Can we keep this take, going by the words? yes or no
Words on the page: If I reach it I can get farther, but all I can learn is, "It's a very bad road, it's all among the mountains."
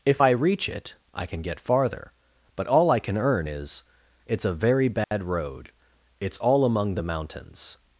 no